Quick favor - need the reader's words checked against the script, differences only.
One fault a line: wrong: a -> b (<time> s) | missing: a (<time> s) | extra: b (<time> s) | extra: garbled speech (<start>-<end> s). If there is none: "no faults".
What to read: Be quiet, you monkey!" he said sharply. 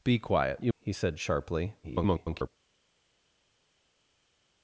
missing: monkey (0.7 s)
extra: garbled speech (1.8-2.5 s)